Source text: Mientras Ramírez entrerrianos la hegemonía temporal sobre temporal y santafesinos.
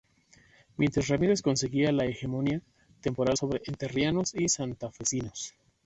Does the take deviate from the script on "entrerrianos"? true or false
true